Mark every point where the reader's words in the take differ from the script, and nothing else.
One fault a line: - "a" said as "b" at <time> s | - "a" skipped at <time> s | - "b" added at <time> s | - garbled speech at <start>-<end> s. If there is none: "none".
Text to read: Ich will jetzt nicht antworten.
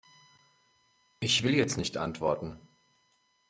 none